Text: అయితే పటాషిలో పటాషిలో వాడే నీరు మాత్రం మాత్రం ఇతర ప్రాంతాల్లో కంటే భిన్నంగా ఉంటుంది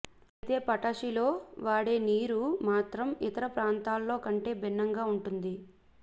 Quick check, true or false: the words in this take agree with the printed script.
false